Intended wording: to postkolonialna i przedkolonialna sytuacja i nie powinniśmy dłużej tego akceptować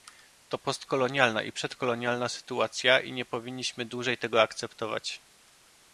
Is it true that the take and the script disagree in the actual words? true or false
false